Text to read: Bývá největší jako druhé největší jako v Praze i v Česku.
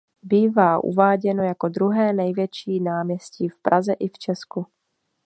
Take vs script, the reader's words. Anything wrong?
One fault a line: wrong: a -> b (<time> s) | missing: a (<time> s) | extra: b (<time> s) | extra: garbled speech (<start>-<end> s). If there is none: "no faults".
wrong: největší -> uváděno (0.8 s)
wrong: jako -> náměstí (2.8 s)